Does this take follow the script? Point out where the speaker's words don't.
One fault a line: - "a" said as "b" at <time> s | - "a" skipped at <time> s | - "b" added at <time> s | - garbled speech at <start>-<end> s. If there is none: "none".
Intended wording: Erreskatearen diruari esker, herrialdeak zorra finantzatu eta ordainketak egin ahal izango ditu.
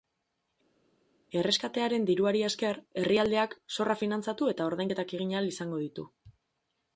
none